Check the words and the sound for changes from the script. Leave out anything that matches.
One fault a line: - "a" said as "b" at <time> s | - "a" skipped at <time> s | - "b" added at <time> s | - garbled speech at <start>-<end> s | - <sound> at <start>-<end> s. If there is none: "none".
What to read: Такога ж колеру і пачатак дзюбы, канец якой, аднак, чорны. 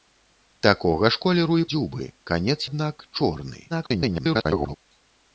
- "пачатак" skipped at 1.7 s
- "якой" skipped at 2.6 s
- garbled speech at 3.7-4.8 s